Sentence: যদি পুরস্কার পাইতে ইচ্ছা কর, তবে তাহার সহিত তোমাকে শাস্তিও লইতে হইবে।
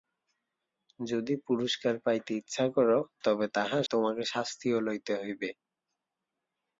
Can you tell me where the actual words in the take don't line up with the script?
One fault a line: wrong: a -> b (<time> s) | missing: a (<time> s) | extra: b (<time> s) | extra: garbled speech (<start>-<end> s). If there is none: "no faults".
missing: সহিত (3.8 s)